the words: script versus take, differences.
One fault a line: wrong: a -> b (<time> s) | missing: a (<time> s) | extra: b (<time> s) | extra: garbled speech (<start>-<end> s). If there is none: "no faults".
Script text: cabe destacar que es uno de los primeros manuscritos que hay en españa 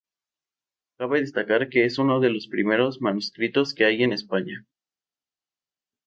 no faults